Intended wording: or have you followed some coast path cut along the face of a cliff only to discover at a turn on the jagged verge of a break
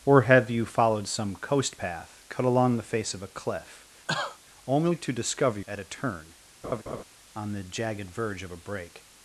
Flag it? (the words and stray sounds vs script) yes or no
yes